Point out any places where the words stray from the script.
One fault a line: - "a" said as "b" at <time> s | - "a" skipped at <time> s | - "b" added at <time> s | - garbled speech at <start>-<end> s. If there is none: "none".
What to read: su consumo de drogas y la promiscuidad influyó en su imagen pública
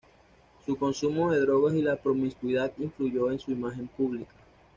none